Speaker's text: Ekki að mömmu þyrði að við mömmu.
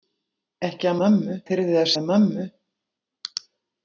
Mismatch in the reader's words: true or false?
false